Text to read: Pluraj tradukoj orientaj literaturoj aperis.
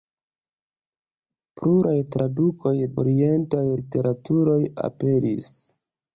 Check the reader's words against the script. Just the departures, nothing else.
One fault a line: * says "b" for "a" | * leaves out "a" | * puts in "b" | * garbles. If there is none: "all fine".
all fine